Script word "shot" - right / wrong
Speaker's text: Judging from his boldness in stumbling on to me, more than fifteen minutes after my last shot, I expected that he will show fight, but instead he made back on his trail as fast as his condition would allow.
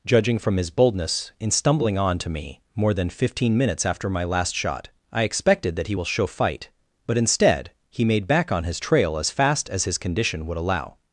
right